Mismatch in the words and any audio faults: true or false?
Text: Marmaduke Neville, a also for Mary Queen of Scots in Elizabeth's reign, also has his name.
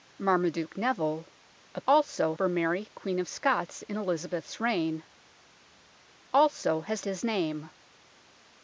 false